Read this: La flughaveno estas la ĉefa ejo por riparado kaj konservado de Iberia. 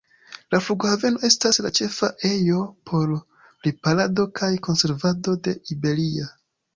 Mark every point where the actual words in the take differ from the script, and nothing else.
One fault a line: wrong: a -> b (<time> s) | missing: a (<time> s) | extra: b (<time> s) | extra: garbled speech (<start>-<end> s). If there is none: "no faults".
no faults